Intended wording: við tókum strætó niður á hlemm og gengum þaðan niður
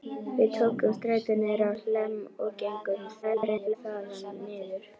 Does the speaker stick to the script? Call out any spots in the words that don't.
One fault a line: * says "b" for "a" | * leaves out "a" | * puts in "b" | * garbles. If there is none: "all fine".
* garbles